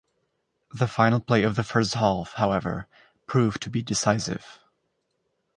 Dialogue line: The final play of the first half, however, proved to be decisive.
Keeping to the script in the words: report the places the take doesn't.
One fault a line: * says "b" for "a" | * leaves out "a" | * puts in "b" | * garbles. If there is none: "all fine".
all fine